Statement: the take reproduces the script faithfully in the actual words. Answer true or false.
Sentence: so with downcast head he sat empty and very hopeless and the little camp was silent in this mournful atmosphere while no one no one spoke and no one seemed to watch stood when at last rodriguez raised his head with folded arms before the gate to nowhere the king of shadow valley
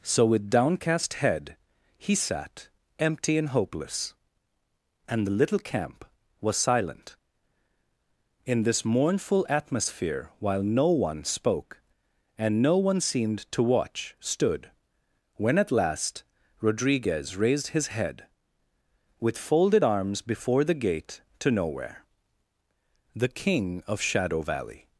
false